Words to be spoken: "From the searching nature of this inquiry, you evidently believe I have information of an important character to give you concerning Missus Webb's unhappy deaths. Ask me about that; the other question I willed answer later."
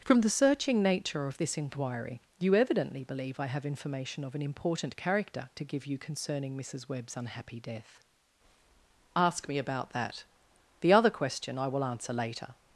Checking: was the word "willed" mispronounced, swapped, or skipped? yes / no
yes